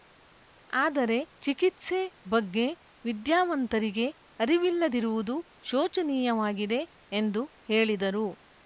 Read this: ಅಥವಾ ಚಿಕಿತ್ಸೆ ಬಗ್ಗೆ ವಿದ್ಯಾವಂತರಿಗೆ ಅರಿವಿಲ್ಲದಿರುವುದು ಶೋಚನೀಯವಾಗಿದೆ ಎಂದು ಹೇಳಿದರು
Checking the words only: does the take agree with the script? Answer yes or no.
no